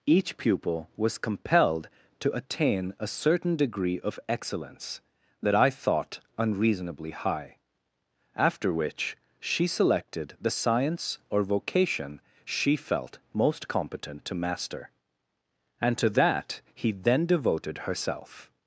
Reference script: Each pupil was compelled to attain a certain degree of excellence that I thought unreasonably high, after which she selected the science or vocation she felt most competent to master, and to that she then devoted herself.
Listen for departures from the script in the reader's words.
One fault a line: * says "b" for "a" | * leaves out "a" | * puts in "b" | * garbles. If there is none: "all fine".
* says "he" for "she"